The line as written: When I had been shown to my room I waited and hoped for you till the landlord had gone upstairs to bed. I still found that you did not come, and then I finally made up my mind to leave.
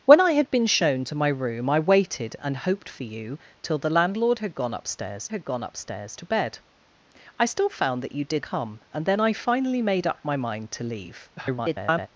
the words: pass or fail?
fail